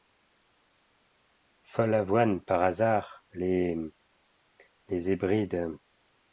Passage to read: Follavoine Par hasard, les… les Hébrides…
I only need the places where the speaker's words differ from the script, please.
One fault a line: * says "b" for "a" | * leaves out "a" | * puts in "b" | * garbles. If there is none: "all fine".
all fine